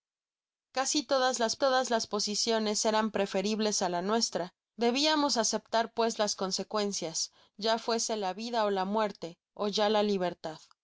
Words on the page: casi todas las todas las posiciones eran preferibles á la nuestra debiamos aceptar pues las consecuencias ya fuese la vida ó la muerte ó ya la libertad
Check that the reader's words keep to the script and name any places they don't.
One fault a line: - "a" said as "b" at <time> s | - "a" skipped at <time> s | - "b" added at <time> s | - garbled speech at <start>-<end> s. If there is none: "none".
none